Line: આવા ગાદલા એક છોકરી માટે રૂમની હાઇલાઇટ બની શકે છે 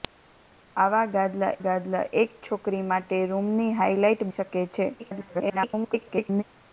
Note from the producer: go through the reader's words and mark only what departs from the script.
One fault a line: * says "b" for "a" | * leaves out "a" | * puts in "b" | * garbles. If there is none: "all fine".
* puts in "ગાદલા"
* leaves out "બની"
* garbles